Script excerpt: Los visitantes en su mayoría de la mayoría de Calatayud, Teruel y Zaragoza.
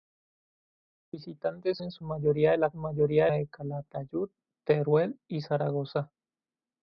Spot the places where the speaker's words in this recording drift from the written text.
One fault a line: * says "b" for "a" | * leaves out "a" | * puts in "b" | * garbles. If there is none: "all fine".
all fine